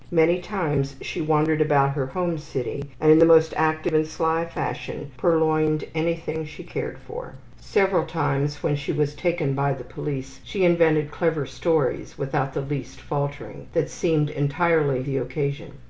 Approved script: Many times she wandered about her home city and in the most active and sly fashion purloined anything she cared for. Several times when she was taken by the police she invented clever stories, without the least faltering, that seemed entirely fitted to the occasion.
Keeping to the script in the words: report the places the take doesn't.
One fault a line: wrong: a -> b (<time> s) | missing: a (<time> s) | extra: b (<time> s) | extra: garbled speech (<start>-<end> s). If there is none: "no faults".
missing: fitted to (15.0 s)